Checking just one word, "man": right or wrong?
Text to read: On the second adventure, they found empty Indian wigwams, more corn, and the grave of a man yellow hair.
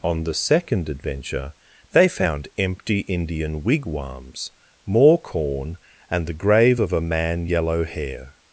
right